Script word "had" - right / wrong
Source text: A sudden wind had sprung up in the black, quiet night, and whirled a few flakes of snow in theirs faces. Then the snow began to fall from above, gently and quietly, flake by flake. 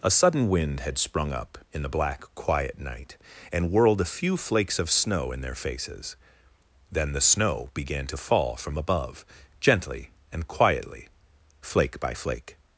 right